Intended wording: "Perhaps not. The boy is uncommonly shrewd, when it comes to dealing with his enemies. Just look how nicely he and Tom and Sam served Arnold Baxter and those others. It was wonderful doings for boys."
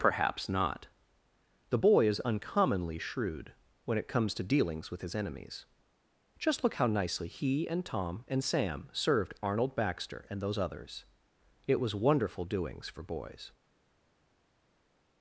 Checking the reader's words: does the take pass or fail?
fail